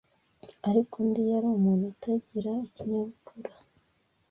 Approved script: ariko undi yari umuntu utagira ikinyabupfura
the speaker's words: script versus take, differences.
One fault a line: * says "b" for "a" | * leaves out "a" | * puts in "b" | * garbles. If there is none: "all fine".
all fine